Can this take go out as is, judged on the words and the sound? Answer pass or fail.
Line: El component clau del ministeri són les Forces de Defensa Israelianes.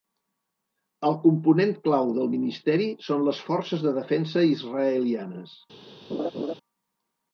fail